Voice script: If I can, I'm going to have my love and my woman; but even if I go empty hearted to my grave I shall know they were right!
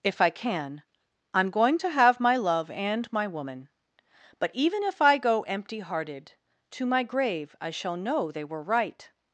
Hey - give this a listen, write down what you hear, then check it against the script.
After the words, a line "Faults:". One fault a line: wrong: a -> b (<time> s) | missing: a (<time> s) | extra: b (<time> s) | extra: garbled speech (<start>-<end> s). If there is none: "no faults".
If I can, I'm going to have my love and my woman; but even if I go empty hearted to my grave I shall know they were right!
Faults:
no faults